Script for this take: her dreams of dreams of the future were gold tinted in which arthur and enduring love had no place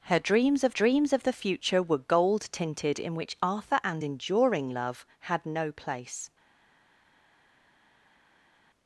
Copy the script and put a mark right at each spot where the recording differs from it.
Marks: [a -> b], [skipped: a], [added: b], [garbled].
her dreams of dreams of the future were gold tinted in which arthur and enduring love had no place